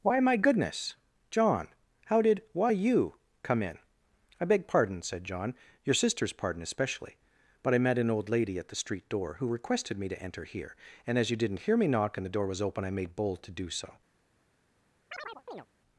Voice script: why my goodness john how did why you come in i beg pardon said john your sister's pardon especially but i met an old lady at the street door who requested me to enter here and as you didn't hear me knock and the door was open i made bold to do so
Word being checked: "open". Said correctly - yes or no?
yes